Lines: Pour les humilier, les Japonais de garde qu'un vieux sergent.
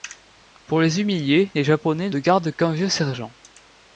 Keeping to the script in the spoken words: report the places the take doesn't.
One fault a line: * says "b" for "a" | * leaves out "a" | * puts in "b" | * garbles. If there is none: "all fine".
all fine